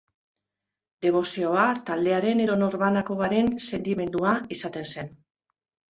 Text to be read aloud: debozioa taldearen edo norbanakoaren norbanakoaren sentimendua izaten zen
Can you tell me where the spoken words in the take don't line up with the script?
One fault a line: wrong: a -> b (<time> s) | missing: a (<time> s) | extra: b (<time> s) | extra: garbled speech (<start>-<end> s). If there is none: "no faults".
missing: norbanakoaren (3.5 s)